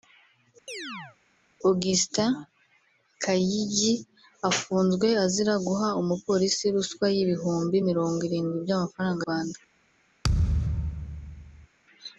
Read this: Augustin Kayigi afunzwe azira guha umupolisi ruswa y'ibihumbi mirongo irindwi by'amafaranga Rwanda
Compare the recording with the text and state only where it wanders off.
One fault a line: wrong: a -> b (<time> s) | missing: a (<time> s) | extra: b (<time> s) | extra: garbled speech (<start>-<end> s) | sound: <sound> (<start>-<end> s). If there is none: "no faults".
sound: chirp (0.7-1.2 s)
sound: thud (10.2-11.7 s)